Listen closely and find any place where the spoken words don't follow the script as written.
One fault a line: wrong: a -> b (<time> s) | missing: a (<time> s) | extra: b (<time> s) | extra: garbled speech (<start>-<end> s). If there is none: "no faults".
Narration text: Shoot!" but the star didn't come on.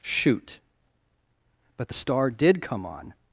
wrong: didn't -> did (2.3 s)